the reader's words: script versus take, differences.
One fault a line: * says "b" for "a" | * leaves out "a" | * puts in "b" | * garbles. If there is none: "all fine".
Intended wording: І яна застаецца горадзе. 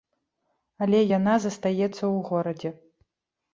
* says "Але" for "І"
* puts in "ў"